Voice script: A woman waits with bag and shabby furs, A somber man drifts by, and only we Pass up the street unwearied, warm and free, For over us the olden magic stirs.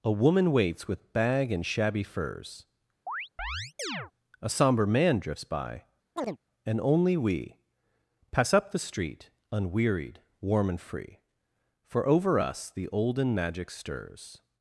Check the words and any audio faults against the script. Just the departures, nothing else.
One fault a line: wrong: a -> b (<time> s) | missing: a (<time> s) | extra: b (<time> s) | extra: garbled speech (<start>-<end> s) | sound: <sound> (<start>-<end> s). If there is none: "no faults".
sound: chirp (3.1-4.1 s)
sound: chirp (6.2-6.4 s)